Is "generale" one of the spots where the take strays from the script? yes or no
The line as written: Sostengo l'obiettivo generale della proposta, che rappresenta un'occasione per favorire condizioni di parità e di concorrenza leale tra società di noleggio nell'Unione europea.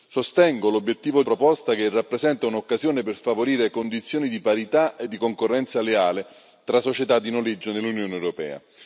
yes